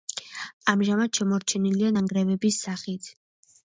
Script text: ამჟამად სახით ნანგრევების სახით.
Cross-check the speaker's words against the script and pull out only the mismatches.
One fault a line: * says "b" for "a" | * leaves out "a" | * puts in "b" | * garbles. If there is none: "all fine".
* says "შემორჩენილია" for "სახით"